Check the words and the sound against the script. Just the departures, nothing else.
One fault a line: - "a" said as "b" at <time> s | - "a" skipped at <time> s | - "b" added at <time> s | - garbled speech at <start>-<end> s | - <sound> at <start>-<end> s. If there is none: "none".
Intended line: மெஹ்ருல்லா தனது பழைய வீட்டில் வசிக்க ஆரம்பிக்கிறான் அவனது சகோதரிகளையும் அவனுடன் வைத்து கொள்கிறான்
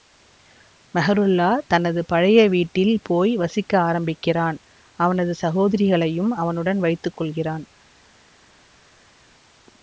- "போய்" added at 3.0 s